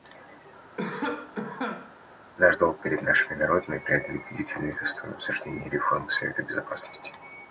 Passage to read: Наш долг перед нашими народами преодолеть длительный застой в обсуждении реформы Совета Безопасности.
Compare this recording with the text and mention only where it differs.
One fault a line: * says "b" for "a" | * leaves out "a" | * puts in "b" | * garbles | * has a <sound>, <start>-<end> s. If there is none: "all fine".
* has a cough, 0.8-2.0 s